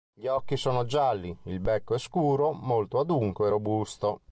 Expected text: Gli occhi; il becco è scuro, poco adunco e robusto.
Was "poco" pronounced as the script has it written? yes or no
no